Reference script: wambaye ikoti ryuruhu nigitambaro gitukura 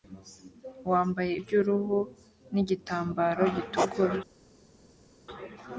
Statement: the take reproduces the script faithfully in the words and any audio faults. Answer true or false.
false